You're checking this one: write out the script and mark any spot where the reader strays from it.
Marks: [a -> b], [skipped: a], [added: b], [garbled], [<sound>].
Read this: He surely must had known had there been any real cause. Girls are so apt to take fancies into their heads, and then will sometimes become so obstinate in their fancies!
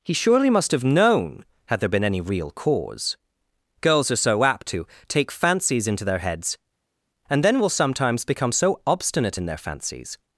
He surely must [had -> have] known had there been any real cause. Girls are so apt to take fancies into their heads, and then will sometimes become so obstinate in their fancies!